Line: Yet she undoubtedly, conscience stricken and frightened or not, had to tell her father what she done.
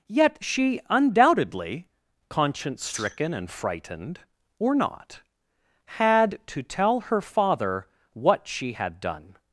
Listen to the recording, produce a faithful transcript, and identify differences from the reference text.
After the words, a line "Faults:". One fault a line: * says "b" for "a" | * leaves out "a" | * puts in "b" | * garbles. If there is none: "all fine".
Yet she undoubtedly, conscience stricken and frightened or not, had to tell her father what she had done.
Faults:
* puts in "had"